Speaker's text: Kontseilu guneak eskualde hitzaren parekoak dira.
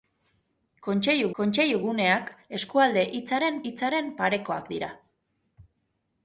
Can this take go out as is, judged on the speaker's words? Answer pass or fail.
fail